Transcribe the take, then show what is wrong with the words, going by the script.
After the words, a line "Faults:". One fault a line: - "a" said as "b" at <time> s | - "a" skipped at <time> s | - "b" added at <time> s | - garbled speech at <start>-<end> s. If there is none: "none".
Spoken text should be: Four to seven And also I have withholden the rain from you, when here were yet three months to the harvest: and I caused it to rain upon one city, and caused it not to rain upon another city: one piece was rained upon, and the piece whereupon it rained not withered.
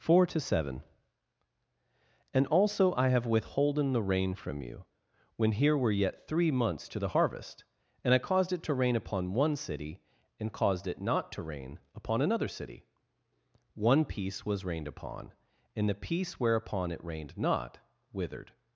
Four to seven And also I have withholden the rain from you, when here were yet three months to the harvest: and I caused it to rain upon one city, and caused it not to rain upon another city: one piece was rained upon, and the piece whereupon it rained not withered.
Faults:
none